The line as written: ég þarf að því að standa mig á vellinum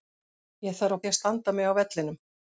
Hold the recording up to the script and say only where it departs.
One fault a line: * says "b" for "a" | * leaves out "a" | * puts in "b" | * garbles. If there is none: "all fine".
all fine